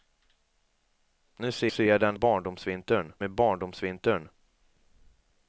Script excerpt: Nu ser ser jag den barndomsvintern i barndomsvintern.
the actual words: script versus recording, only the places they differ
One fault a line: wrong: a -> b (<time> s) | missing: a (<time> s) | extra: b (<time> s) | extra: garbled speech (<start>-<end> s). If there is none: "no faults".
no faults